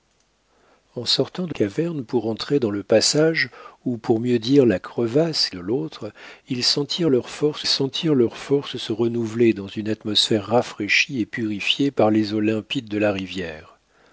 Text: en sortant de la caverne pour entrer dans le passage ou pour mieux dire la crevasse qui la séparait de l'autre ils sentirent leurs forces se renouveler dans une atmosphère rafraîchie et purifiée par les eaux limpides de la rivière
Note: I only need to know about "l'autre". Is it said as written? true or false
false